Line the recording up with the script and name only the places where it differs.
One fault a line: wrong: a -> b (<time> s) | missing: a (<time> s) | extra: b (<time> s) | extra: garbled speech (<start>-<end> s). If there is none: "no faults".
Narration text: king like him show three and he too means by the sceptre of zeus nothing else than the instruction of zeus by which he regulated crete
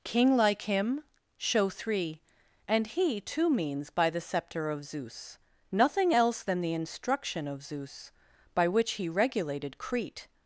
no faults